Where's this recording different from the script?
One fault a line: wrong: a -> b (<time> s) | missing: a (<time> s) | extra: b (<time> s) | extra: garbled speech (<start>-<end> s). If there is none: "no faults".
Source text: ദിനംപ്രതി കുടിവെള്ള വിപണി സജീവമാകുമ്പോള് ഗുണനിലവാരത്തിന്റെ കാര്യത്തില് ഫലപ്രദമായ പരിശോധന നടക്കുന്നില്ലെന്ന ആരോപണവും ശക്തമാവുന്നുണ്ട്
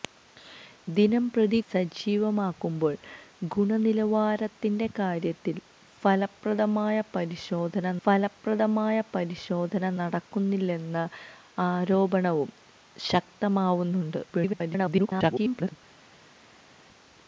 missing: കുടിവെള്ള വിപണി (1.6 s)
extra: ഫലപ്രദമായ പരിശോധന (8.0 s)
extra: garbled speech (14.3-15.8 s)